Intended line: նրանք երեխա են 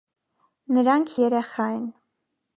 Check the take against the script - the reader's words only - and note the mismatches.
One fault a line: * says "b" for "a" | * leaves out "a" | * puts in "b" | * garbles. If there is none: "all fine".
all fine